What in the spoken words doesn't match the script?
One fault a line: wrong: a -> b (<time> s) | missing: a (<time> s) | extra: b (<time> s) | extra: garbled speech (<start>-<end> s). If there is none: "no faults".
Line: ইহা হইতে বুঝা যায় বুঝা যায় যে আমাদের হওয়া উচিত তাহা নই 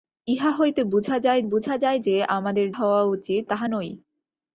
no faults